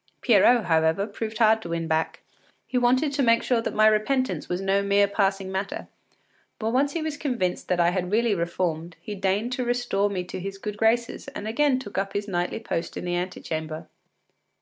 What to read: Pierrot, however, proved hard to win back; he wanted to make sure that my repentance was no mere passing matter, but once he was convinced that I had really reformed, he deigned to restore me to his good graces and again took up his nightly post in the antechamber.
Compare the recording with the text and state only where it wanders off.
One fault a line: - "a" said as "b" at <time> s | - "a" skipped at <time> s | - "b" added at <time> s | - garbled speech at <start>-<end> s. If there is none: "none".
none